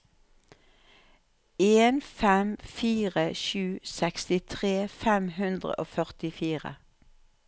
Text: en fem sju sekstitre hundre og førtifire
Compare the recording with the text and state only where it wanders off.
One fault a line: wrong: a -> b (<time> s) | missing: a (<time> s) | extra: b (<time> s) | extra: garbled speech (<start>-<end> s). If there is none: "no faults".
extra: fire (2.8 s)
extra: fem (5.0 s)